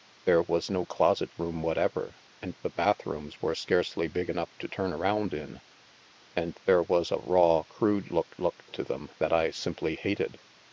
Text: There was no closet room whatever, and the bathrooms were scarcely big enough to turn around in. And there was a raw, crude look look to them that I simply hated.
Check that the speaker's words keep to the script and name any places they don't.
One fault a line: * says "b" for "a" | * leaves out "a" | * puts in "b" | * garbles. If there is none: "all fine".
all fine